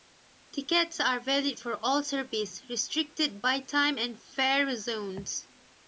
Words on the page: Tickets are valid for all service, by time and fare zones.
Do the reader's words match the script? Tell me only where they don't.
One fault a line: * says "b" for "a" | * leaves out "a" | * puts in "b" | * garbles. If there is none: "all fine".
* puts in "restricted"